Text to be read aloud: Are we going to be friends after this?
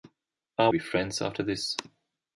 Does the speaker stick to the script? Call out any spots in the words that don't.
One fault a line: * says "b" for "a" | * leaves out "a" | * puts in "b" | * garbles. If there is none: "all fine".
* leaves out "we going to"